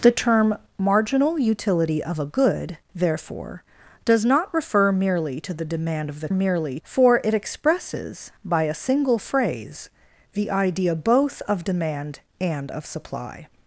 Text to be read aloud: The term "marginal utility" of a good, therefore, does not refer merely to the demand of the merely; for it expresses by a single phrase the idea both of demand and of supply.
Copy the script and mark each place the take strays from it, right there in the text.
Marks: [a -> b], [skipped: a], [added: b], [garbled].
The term "marginal utility" of a good, therefore, does not refer merely to the demand of the merely; for it expresses by a single phrase the idea both of demand and of supply.